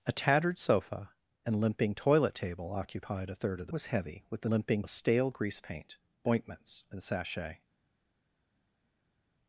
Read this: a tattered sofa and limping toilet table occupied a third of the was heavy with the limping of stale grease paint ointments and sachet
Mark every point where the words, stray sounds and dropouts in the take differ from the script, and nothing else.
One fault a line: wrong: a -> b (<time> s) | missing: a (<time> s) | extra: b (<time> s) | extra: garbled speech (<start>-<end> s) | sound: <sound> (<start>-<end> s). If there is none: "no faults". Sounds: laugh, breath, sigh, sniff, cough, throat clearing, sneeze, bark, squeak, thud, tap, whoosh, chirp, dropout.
no faults